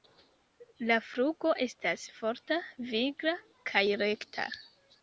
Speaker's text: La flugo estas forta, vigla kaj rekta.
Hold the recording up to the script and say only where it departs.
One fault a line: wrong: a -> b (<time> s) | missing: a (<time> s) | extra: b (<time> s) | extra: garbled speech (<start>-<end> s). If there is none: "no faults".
no faults